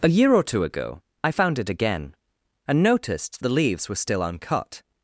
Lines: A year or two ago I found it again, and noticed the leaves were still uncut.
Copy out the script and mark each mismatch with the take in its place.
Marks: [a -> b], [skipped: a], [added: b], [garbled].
A year or two ago I found it again, and noticed the leaves were still uncut.